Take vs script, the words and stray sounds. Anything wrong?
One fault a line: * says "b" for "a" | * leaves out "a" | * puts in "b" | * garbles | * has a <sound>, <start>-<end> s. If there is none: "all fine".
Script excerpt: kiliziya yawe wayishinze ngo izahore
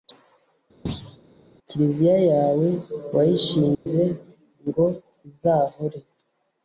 * has a thud, 0.9-1.2 s
* has a dropout, 3.7-3.9 s